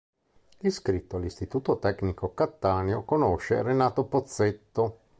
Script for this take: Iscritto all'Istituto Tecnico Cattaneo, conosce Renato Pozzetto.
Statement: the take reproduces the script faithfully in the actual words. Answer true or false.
true